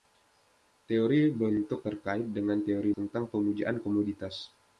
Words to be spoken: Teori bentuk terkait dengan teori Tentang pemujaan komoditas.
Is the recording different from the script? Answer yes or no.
no